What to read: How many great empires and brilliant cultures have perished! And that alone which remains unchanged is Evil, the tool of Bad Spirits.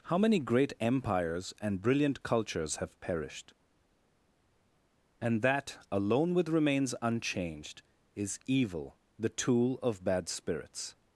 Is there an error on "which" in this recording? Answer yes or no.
yes